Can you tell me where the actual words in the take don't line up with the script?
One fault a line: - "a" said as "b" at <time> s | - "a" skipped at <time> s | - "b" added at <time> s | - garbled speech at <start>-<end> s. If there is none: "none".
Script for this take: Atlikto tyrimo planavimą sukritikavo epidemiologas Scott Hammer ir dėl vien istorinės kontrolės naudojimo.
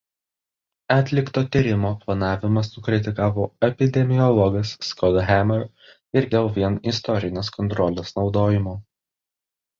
none